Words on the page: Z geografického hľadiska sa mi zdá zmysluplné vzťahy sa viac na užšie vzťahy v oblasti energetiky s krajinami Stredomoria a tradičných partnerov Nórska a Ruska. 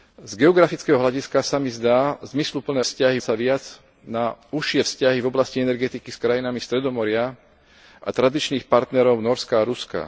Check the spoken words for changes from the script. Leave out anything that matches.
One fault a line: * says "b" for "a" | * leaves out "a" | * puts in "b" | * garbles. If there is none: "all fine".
all fine